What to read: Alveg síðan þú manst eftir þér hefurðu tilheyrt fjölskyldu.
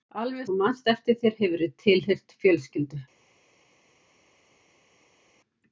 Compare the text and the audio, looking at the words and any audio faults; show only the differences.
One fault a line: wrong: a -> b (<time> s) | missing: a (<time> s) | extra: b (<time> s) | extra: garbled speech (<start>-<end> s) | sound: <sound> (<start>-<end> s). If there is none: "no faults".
missing: síðan (0.5 s)